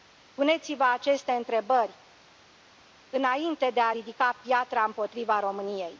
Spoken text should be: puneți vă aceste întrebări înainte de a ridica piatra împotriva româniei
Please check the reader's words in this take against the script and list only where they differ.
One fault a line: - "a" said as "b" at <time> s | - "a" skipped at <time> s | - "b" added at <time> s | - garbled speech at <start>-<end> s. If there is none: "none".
none